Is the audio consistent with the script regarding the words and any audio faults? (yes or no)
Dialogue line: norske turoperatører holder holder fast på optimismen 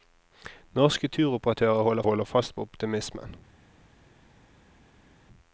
yes